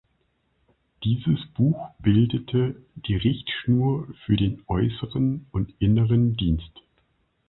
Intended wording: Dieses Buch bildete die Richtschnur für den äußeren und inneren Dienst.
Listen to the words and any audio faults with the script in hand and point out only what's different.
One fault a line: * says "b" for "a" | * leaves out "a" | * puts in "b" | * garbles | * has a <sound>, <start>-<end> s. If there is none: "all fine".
all fine